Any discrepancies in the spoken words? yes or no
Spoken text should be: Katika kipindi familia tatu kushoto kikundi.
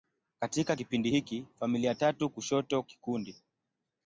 yes